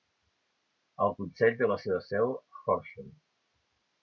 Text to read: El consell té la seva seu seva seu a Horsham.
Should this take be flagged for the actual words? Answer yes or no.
yes